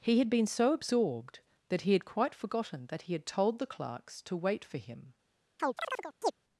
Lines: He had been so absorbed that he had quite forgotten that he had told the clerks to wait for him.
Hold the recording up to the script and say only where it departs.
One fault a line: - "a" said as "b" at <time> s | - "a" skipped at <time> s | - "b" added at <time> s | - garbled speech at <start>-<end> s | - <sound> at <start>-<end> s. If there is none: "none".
- chirp at 5.6-6.3 s